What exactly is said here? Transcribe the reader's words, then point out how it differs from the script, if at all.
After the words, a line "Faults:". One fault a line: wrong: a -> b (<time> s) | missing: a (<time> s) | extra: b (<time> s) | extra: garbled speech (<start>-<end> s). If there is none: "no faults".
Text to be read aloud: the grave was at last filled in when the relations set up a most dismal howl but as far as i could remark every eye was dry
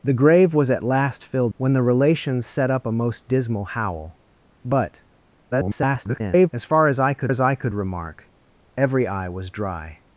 the grave was at last filled when the relations set up a most dismal howl but [garbled] as far as i could as i could remark every eye was dry
Faults:
missing: in (1.5 s)
extra: garbled speech (5.5-6.5 s)
extra: as i could (7.3 s)